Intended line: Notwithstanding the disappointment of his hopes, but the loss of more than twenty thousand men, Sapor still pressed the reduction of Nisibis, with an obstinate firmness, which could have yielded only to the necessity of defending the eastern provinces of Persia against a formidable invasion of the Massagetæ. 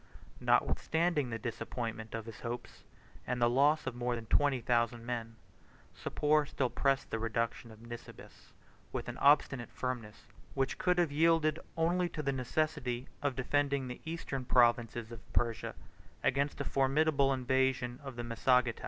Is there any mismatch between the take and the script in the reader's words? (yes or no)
yes